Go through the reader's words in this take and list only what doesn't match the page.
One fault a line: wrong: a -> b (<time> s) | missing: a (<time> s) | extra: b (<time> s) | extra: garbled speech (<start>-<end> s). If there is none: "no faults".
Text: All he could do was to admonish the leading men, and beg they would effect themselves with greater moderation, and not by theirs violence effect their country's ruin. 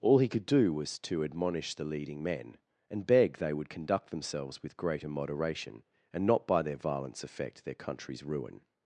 wrong: effect -> conduct (3.7 s)
wrong: theirs -> their (6.6 s)